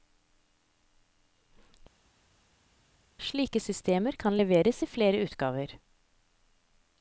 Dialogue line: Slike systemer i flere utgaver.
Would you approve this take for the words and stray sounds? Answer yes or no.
no